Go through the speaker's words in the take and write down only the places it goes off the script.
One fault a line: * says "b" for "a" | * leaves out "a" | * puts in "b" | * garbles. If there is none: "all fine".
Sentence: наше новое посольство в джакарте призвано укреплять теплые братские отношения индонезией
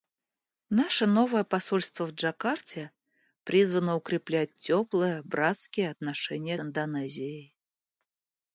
all fine